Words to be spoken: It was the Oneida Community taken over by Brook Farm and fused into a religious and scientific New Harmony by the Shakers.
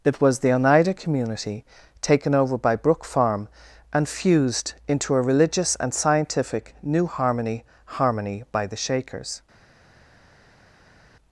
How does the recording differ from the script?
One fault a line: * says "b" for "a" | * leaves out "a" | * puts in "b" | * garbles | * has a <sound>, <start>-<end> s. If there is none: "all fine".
* puts in "Harmony"